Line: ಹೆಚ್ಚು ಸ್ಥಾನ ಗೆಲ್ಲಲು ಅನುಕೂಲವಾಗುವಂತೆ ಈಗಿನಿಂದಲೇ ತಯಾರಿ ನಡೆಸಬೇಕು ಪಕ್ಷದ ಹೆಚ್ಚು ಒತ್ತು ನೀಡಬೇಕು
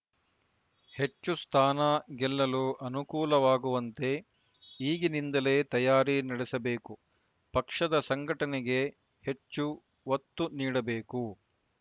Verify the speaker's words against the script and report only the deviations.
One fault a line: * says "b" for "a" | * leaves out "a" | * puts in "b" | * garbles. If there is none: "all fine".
* puts in "ಸಂಘಟನೆಗೆ"